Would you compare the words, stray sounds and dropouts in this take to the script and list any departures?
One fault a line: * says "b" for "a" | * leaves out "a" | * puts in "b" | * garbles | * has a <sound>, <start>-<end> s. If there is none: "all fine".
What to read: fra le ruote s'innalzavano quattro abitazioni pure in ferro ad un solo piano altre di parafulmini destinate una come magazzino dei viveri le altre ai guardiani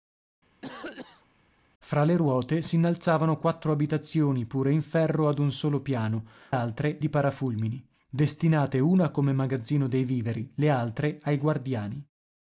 * has a cough, 0.6-1.3 s